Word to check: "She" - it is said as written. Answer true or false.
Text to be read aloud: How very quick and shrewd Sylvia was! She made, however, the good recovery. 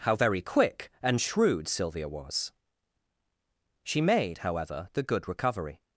true